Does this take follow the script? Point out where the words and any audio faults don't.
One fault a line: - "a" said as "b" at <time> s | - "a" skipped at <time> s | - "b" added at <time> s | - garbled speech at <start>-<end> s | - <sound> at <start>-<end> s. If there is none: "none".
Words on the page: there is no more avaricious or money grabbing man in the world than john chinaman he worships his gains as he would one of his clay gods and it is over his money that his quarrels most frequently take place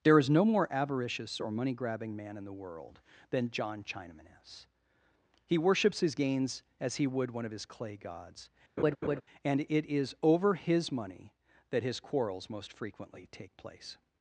- "is" added at 4.4 s
- laugh at 8.8-9.2 s